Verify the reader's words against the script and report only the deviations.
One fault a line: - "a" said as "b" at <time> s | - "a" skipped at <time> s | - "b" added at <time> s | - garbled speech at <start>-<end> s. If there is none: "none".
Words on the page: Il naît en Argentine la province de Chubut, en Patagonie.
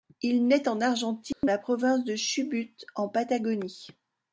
none